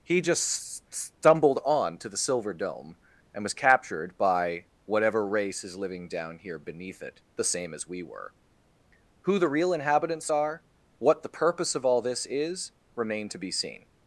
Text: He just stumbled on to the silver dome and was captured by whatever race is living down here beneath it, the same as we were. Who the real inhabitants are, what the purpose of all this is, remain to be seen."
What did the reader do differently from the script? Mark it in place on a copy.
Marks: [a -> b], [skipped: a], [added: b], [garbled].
He just stumbled on to the silver dome and was captured by whatever race is living down here beneath it, the same as we were. Who the real inhabitants are, what the purpose of all this is, remain to be seen."